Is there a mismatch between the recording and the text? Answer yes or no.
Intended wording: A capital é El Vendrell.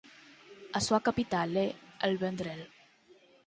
yes